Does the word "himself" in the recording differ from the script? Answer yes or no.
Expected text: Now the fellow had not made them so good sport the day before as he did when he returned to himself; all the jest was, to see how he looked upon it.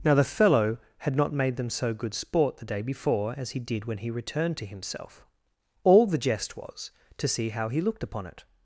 no